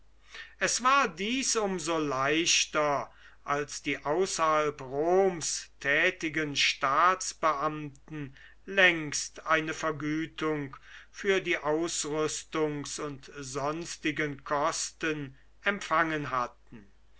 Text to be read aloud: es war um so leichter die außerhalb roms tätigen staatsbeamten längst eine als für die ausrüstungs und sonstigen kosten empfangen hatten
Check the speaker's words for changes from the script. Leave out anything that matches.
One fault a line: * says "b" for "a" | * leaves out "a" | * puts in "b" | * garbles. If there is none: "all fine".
* puts in "dies"
* puts in "als"
* says "vergütung" for "als"